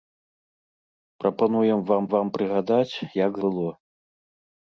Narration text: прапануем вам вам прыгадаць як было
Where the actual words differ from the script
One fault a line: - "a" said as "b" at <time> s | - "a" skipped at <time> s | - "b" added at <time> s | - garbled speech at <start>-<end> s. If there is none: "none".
none